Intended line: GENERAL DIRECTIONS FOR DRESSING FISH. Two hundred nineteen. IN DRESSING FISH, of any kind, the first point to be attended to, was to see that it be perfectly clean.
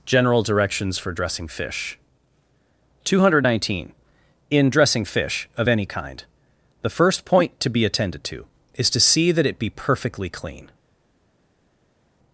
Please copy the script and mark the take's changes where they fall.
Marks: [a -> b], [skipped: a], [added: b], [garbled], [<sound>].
GENERAL DIRECTIONS FOR DRESSING FISH. Two hundred nineteen. IN DRESSING FISH, of any kind, the first point to be attended to, [was -> is] to see that it be perfectly clean.